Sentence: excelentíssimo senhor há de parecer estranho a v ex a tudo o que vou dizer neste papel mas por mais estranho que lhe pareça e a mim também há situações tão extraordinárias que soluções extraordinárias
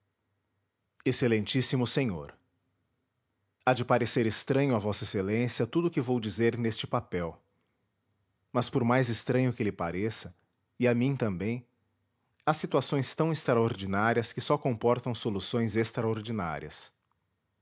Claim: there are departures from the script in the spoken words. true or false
true